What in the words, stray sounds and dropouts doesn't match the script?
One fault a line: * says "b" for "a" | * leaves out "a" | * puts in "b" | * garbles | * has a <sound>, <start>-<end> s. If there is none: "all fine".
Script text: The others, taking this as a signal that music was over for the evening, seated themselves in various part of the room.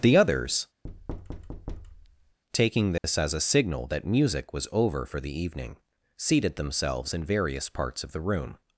* has a thud, 0.8-2.4 s
* has a dropout, 3.0-3.0 s
* says "parts" for "part"